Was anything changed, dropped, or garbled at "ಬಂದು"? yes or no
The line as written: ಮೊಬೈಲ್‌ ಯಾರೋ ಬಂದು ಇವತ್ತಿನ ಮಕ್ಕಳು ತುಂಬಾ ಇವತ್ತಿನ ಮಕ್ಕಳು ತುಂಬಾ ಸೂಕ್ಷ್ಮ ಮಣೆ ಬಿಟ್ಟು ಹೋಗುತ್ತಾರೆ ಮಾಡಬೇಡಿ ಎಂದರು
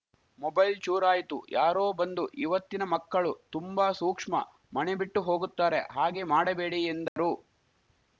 no